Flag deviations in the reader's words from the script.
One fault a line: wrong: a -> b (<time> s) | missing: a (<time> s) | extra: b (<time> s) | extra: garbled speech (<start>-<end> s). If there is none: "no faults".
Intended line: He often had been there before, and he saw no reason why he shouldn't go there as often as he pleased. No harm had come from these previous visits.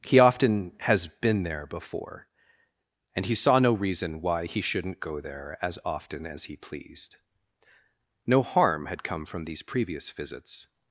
wrong: had -> has (0.8 s)